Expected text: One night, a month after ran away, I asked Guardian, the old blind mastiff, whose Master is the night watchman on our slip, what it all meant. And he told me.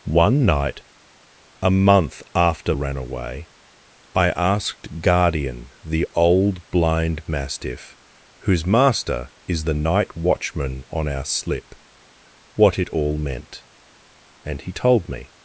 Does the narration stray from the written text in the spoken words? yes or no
no